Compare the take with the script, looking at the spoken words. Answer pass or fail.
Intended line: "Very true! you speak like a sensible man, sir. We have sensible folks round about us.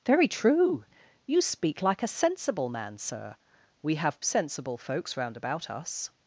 pass